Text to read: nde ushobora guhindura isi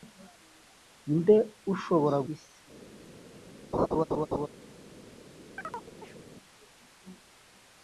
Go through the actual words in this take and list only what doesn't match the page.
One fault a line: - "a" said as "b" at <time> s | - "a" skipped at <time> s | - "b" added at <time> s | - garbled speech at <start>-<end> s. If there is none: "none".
- "guhindura" skipped at 2.2 s